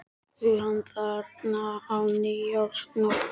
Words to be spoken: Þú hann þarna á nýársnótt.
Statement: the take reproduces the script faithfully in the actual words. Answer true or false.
true